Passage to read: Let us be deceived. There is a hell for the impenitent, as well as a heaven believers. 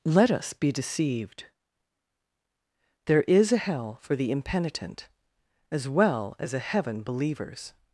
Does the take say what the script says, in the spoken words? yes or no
yes